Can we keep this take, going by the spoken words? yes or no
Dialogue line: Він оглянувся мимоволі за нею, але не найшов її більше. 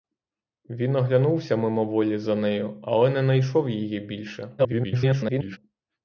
no